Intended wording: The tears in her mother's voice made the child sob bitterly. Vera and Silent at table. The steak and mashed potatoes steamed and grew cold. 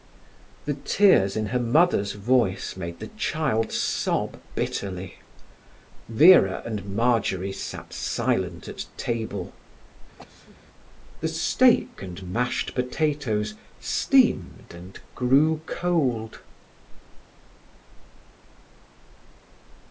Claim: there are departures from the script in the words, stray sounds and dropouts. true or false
true